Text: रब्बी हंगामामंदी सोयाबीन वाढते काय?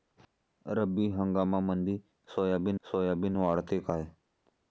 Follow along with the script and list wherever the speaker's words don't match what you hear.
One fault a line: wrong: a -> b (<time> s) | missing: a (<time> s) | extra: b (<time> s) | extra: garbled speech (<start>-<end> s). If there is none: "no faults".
extra: सोयाबीन (2.9 s)